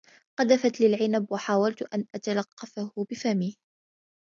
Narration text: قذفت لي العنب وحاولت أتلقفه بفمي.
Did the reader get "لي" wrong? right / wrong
right